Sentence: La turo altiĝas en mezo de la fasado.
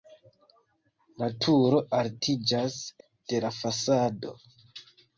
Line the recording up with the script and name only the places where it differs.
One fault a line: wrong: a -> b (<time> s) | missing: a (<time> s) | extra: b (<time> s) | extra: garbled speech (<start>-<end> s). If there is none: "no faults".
missing: en mezo (2.8 s)